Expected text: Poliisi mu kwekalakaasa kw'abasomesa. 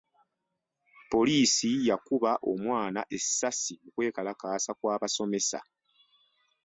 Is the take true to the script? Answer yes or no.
no